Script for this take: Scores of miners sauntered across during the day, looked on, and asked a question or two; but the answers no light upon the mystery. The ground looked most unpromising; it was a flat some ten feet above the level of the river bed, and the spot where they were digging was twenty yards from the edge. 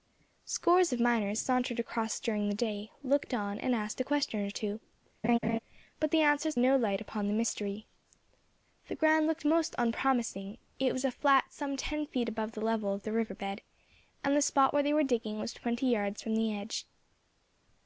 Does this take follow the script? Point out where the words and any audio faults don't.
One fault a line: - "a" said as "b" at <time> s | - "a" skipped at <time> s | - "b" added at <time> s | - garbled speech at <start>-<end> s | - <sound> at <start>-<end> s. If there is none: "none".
- laugh at 5.2-5.6 s